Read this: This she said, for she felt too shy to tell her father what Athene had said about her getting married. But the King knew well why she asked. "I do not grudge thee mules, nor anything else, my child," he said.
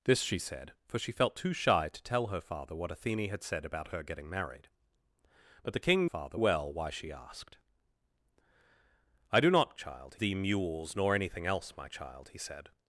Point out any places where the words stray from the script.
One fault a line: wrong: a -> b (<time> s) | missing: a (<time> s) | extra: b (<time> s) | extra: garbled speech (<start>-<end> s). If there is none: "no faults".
wrong: knew -> father (6.0 s)
wrong: grudge -> child (9.7 s)